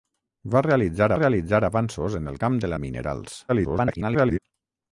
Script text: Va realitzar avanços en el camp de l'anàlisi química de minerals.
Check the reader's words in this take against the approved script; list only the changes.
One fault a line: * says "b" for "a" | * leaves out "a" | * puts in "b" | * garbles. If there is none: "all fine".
* puts in "realitzar"
* leaves out "l'anàlisi química"
* garbles